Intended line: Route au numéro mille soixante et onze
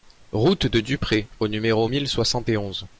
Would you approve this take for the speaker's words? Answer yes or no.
no